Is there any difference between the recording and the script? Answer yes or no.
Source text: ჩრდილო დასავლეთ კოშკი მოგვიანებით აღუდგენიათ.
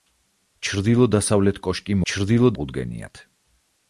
yes